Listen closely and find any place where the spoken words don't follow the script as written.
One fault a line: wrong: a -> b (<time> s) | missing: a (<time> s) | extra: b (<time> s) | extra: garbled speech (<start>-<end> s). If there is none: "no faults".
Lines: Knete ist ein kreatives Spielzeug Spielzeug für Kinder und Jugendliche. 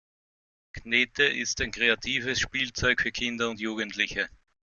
missing: Spielzeug (3.0 s)